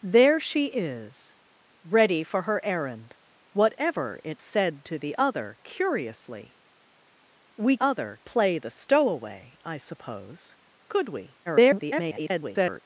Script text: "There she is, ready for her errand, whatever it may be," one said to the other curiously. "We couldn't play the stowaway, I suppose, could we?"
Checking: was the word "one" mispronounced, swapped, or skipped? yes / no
yes